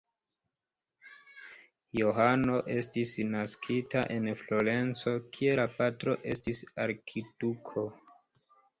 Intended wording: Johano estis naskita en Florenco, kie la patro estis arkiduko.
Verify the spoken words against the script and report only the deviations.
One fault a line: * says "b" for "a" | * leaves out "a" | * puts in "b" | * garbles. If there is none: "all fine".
all fine